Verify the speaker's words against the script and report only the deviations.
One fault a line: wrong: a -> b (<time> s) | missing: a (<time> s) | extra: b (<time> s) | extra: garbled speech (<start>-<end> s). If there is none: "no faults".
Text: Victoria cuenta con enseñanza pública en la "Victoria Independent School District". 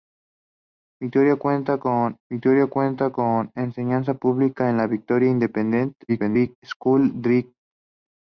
extra: victoria cuenta con (2.3 s)
extra: garbled speech (6.1-6.6 s)